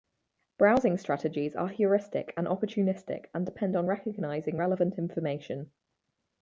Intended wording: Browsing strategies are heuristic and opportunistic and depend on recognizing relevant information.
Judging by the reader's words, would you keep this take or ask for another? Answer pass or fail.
pass